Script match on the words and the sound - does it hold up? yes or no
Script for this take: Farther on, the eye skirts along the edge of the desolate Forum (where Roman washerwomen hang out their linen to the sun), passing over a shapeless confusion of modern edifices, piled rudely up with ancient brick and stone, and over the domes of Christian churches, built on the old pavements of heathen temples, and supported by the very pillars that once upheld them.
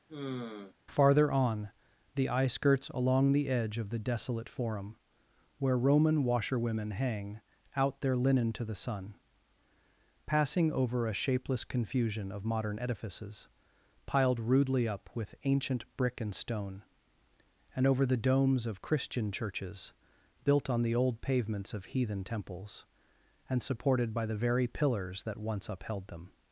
no